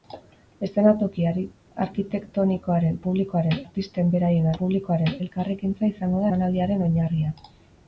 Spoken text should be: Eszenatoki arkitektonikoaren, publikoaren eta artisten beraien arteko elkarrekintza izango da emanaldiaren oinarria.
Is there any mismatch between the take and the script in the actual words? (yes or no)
yes